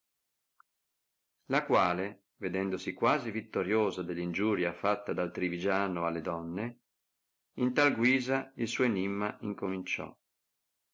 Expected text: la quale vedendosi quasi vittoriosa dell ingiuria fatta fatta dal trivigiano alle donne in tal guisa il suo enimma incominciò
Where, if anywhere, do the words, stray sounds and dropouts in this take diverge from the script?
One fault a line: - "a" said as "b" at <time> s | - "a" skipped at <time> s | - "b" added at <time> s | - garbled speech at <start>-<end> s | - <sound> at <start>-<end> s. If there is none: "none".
- "fatta" skipped at 5.1 s